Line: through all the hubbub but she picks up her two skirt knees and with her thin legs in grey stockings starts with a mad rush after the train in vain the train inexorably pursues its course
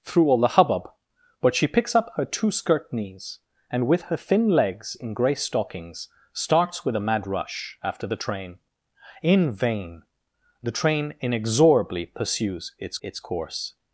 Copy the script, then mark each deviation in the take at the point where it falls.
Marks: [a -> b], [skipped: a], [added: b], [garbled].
through all the hubbub but she picks up her two skirt knees and with her thin legs in grey stockings starts with a mad rush after the train in vain the train inexorably pursues its [added: its] course